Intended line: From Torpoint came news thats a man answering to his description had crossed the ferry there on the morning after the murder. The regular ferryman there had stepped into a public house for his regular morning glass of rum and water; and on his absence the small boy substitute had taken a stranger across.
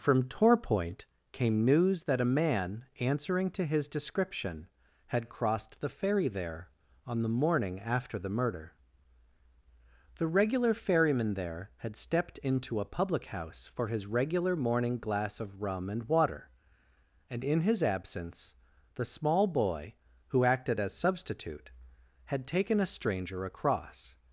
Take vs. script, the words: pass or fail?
fail